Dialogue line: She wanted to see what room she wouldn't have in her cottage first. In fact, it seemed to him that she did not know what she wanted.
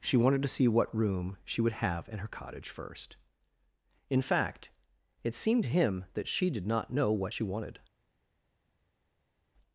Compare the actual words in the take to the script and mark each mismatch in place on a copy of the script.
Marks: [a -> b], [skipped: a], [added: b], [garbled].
She wanted to see what room she [wouldn't -> would] have in her cottage first. In fact, it seemed to him that she did not know what she wanted.